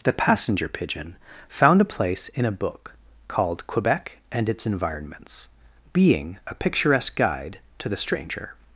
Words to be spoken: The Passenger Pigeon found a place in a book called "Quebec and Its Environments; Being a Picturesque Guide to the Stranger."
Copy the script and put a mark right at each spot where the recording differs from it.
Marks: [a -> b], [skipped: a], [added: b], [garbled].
The Passenger Pigeon found a place in a book called "Quebec and Its Environments; Being a Picturesque Guide to the Stranger."